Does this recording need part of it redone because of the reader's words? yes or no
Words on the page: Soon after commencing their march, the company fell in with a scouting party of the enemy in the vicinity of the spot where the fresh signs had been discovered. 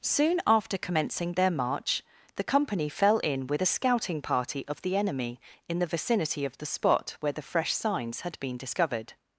no